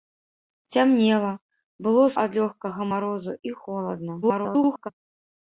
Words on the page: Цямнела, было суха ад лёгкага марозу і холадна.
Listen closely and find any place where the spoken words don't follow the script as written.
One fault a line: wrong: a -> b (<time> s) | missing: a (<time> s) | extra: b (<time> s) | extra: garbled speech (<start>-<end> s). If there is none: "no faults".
missing: суха (2.0 s)
extra: garbled speech (4.2-4.9 s)